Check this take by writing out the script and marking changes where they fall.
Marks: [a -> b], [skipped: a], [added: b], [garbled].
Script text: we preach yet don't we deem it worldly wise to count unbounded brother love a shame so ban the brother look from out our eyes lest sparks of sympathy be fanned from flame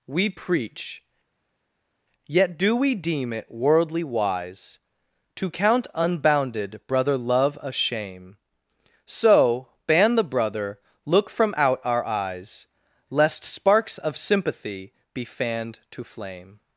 we preach yet [don't -> do] we deem it worldly wise to count unbounded brother love a shame so ban the brother look from out our eyes lest sparks of sympathy be fanned [from -> to] flame